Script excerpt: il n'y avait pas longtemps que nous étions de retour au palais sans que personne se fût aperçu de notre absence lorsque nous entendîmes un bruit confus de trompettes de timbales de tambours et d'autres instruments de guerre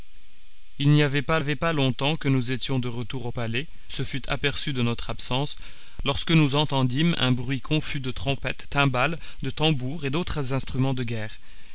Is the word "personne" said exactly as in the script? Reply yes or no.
no